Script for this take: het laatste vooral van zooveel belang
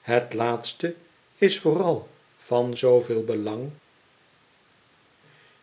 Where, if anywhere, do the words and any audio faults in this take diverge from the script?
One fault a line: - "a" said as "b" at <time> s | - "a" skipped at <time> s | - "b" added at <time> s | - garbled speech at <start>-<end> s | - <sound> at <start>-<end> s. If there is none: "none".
- "is" added at 1.4 s